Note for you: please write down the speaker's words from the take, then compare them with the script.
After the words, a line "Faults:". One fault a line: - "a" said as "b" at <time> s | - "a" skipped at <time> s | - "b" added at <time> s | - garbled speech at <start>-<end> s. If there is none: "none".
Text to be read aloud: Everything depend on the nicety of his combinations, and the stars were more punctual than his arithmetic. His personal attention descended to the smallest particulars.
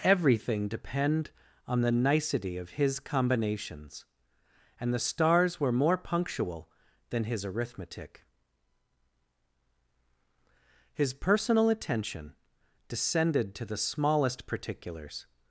Everything depend on the nicety of his combinations, and the stars were more punctual than his arithmetic. His personal attention descended to the smallest particulars.
Faults:
none